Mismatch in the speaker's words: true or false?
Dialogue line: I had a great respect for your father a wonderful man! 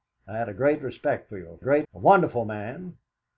true